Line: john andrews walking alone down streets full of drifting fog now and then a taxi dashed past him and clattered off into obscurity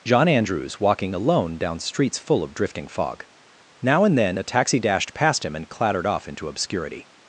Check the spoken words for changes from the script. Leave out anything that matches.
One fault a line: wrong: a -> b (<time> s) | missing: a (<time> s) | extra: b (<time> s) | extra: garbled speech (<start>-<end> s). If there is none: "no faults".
no faults